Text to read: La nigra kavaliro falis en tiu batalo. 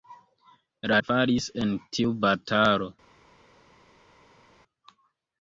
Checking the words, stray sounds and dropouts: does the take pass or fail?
fail